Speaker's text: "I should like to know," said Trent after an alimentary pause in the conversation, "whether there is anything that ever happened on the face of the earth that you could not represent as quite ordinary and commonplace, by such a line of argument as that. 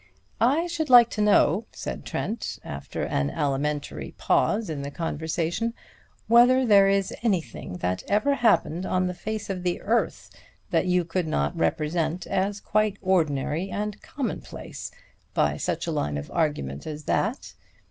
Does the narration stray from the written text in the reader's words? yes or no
no